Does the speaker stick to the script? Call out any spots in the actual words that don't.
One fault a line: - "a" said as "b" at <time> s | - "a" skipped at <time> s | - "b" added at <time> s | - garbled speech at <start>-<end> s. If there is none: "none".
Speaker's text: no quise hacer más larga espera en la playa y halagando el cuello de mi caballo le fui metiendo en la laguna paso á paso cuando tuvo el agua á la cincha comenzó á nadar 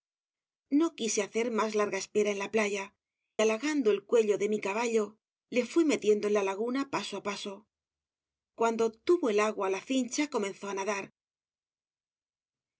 - "y" skipped at 3.0 s